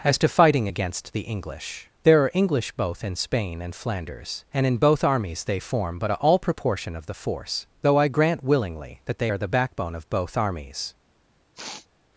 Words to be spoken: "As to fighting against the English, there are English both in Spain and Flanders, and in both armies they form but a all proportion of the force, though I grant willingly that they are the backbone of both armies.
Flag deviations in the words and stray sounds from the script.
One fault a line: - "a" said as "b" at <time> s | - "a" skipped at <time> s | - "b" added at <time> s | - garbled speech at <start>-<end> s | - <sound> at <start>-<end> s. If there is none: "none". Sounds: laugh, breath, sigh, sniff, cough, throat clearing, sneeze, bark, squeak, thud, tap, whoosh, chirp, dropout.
- sniff at 11.5-11.9 s